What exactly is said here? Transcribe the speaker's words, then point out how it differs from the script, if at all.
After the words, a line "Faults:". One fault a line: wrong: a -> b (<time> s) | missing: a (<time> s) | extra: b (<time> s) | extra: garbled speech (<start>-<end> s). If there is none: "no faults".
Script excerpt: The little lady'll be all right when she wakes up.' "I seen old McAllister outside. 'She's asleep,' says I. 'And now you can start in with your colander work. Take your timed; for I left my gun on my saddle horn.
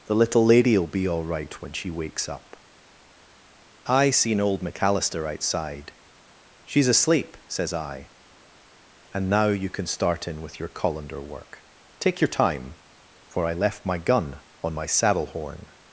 The little lady'll be all right when she wakes up.' "I seen old McAllister outside. 'She's asleep,' says I. 'And now you can start in with your colander work. Take your time; for I left my gun on my saddle horn.
Faults:
wrong: timed -> time (12.3 s)